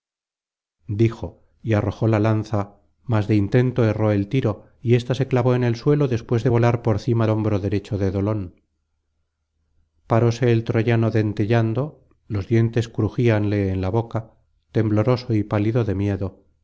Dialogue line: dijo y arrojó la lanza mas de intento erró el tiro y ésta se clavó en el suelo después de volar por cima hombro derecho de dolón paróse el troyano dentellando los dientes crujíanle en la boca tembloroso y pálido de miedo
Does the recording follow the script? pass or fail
pass